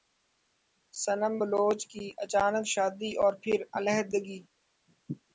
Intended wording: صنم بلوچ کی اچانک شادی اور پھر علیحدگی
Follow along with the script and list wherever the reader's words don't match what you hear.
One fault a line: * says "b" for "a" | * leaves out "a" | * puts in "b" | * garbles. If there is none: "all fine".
all fine